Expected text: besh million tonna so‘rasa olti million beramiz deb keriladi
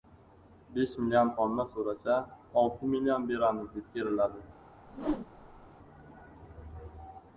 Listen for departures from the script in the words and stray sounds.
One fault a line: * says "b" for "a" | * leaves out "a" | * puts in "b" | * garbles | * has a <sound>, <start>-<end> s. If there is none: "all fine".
* has a whoosh, 4.9-5.7 s